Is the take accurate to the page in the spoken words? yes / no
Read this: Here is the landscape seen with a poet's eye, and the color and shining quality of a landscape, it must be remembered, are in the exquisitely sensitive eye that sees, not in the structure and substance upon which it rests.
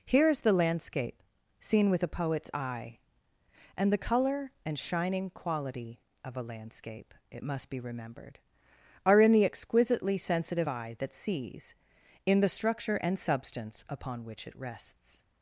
no